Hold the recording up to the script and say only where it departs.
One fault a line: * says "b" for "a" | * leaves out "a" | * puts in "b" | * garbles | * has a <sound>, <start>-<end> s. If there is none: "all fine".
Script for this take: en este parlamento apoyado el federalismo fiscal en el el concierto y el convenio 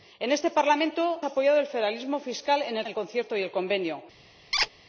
* has a squeak, 4.5-4.7 s